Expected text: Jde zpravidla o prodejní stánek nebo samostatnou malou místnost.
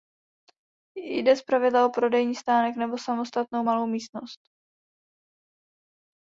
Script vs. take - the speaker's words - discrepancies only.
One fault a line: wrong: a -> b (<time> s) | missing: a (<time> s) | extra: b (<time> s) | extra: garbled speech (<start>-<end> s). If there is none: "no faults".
no faults